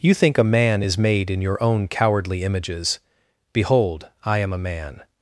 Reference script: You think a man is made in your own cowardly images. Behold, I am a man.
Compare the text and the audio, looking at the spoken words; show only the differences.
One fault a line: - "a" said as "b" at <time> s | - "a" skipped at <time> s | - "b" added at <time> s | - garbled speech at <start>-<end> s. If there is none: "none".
none